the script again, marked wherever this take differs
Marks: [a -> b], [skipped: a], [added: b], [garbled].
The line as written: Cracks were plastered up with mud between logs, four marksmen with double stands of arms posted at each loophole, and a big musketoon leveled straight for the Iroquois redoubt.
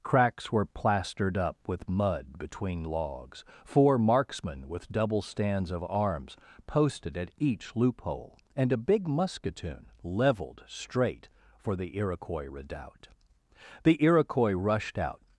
Cracks were plastered up with mud between logs, four marksmen with double stands of arms posted at each loophole, and a big musketoon leveled straight for the Iroquois redoubt. [added: The Iroquois rushed out]